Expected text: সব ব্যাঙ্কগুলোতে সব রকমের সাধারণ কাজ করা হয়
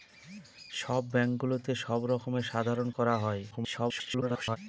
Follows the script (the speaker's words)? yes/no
no